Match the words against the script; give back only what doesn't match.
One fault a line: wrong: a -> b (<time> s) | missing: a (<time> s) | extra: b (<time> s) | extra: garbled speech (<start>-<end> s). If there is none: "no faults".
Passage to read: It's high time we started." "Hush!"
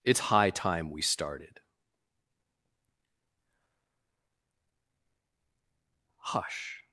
no faults